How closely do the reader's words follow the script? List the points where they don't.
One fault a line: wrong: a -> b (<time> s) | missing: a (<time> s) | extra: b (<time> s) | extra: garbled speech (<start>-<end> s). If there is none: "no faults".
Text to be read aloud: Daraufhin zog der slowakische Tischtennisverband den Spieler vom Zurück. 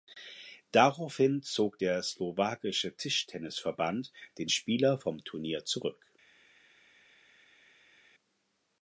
extra: Turnier (5.2 s)